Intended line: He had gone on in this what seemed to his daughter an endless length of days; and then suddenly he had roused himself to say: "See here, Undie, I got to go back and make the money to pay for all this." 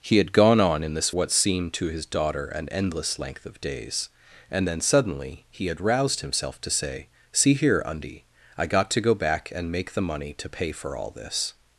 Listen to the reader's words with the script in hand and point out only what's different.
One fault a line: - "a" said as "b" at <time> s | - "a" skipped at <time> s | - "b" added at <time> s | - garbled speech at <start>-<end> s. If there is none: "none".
none